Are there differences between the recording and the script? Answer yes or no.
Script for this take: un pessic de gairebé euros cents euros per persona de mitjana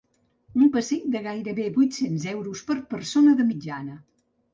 yes